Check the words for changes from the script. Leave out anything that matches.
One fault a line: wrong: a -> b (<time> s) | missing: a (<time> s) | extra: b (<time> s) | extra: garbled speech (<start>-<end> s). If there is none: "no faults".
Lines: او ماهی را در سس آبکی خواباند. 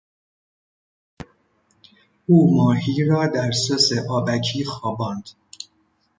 no faults